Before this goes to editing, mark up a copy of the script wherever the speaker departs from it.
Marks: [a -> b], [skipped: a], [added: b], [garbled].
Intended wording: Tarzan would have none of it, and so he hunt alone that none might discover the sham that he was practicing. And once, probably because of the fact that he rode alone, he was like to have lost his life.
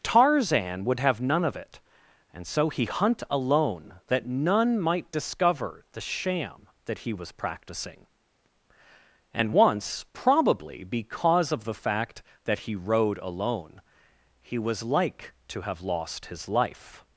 Tarzan would have none of it, and so he hunt alone that none might discover the sham that he was practicing. And once, probably because of the fact that he rode alone, he was like to have lost his life.